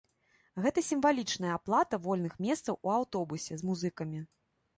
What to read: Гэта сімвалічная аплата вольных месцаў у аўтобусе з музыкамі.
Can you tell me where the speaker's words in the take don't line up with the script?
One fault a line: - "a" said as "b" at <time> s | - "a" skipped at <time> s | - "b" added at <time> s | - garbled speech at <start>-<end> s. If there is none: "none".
none